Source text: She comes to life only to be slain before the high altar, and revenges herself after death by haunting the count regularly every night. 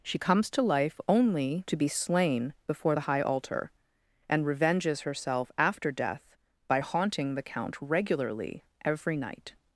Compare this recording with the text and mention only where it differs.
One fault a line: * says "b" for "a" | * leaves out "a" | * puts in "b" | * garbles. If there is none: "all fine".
all fine